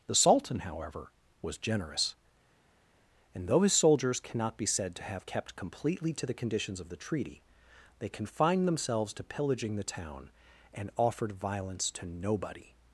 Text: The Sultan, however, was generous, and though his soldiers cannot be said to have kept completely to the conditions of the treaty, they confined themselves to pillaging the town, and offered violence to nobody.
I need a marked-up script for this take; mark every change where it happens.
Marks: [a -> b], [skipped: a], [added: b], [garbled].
The Sultan, however, was generous, and though his soldiers cannot be said to have kept completely to the conditions of the treaty, they confined themselves to pillaging the town, and offered violence to nobody.